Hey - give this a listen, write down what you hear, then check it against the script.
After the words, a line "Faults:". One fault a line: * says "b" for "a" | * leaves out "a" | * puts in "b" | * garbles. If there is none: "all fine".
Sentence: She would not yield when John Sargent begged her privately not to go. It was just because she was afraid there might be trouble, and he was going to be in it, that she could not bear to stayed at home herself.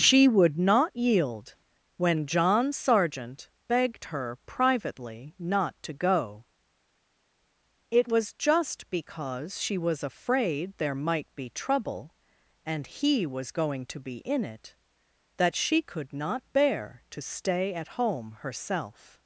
She would not yield when John Sargent begged her privately not to go. It was just because she was afraid there might be trouble, and he was going to be in it, that she could not bear to stay at home herself.
Faults:
* says "stay" for "stayed"